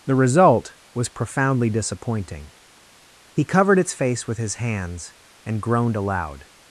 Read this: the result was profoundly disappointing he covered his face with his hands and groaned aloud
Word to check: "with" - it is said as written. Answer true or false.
true